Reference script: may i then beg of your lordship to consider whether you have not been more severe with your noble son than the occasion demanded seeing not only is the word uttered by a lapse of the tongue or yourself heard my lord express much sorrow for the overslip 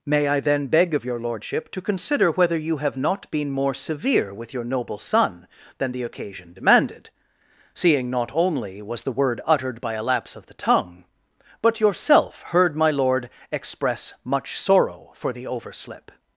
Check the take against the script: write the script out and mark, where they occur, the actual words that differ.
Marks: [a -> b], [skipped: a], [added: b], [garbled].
may i then beg of your lordship to consider whether you have not been more severe with your noble son than the occasion demanded seeing not only [is -> was] the word uttered by a lapse of the tongue [or -> but] yourself heard my lord express much sorrow for the overslip